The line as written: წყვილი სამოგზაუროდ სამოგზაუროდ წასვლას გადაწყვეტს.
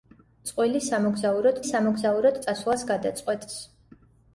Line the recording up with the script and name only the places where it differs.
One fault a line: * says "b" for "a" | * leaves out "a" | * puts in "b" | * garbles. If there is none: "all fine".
all fine